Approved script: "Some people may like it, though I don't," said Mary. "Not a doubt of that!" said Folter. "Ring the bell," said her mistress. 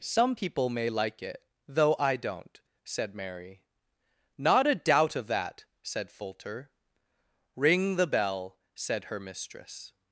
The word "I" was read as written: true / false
true